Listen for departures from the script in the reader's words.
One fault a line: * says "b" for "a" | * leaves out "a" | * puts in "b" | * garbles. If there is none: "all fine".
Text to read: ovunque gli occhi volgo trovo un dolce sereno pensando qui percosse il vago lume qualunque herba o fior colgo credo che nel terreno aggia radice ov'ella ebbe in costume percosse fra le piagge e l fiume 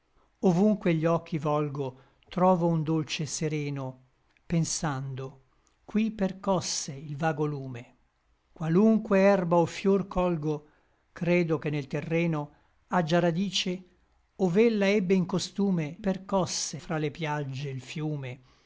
all fine